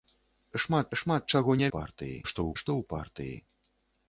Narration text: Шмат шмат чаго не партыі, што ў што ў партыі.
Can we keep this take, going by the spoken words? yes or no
yes